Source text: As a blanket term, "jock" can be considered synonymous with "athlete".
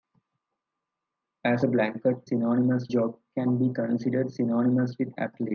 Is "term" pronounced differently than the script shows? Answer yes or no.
yes